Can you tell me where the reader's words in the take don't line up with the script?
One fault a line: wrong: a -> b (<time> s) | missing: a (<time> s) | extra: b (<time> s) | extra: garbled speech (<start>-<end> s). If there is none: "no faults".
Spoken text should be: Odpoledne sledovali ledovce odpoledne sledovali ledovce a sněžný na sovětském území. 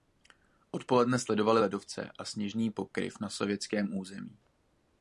missing: odpoledne sledovali ledovce (2.1 s)
extra: pokryv (2.7 s)